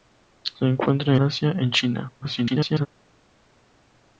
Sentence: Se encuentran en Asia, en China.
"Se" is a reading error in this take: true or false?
false